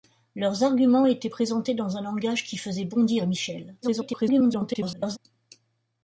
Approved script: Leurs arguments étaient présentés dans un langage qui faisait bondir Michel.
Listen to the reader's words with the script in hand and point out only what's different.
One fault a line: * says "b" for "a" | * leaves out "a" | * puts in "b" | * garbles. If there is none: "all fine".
* garbles